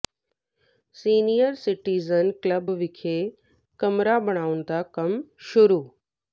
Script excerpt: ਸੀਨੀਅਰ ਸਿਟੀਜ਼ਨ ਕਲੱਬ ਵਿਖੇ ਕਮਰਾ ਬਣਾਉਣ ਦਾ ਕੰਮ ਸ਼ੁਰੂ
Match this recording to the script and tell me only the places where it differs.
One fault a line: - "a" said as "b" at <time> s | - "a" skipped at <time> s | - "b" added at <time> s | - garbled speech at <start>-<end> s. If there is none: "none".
none